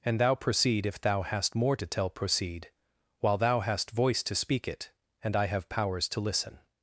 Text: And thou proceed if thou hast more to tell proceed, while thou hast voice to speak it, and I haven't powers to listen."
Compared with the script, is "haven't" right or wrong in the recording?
wrong